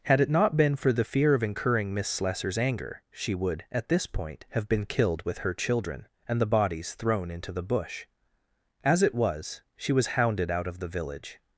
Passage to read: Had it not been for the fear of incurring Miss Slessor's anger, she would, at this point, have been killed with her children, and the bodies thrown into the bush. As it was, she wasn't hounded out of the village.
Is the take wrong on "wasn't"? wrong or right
wrong